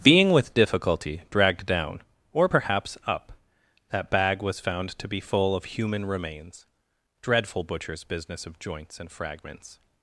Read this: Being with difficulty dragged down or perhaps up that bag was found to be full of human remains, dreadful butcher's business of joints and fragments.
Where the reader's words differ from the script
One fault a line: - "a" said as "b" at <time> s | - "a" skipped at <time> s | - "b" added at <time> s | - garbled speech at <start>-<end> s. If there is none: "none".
none